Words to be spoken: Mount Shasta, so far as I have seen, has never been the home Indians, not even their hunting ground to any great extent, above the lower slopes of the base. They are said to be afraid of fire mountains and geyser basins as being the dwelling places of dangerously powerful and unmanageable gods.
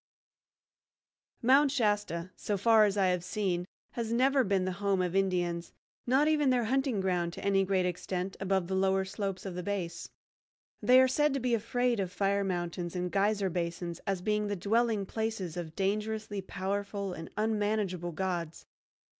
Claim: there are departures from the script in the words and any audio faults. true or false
true